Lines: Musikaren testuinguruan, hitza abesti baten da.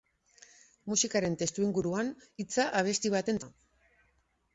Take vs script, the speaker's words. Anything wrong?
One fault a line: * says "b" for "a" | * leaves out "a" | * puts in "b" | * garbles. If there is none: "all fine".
all fine